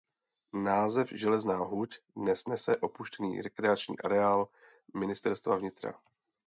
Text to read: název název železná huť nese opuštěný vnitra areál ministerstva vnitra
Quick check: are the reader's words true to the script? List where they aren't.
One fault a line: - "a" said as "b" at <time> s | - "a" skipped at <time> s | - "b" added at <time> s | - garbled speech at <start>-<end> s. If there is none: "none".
- "název" skipped at 1.1 s
- "dnes" added at 2.1 s
- "vnitra" said as "rekreační" at 3.4 s